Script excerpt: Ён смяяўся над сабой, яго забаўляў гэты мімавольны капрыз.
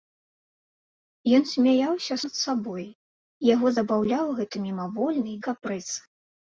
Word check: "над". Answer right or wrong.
right